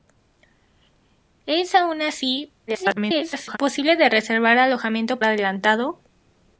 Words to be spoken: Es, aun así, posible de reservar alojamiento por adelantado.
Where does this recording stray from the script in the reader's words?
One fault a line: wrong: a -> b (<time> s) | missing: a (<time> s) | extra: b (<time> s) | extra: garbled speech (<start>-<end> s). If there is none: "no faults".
extra: garbled speech (2.7-3.6 s)
missing: por (5.2 s)